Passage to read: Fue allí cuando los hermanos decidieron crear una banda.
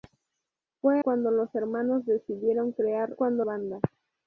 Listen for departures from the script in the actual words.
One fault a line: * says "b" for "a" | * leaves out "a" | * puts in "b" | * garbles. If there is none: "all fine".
* leaves out "allí"
* says "cuando" for "una"